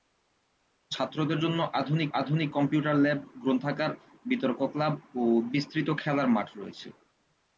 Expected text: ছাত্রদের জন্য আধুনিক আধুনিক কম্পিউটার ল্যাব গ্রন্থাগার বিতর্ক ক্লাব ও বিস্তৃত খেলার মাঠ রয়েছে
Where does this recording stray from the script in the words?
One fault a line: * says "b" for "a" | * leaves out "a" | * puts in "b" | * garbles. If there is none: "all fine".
all fine